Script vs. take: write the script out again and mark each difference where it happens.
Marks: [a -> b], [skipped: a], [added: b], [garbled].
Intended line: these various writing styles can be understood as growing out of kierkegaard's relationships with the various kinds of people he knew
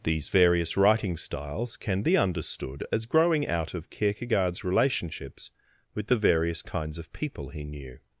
these various writing styles can be understood as growing out of kierkegaard's relationships with the various kinds of people he knew